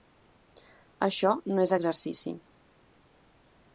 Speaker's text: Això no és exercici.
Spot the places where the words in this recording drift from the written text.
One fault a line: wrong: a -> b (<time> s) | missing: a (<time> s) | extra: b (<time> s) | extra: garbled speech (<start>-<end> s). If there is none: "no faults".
no faults